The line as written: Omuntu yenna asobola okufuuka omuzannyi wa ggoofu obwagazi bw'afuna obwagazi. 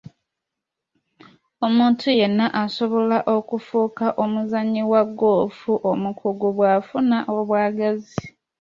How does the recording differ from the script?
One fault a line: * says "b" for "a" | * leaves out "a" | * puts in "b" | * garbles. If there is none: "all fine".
* says "omukugu" for "obwagazi"